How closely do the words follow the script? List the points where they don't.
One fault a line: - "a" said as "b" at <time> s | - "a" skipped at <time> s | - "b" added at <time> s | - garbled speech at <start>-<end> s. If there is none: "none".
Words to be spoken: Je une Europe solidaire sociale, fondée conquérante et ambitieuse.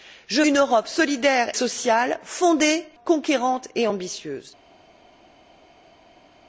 none